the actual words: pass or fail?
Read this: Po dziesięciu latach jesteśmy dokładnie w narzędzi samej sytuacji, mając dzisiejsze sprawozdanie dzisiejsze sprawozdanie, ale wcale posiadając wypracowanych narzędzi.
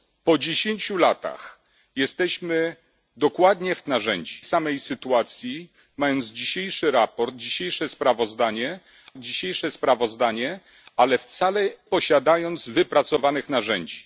pass